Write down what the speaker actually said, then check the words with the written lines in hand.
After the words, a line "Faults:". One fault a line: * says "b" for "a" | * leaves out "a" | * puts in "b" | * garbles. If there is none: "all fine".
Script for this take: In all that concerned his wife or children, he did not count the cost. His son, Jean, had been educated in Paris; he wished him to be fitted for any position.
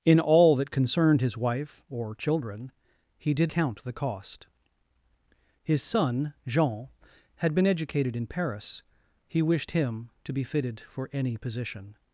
In all that concerned his wife or children, he did count the cost. His son, Jean, had been educated in Paris; he wished him to be fitted for any position.
Faults:
* leaves out "not"